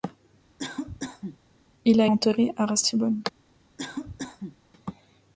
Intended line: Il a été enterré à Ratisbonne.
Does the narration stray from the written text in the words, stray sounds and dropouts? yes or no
yes